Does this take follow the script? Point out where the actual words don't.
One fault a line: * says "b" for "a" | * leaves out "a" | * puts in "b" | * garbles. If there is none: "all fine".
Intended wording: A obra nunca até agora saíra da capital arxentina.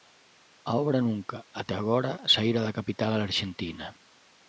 all fine